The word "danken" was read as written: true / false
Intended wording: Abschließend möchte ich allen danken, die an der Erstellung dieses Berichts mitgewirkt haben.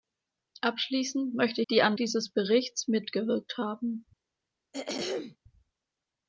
false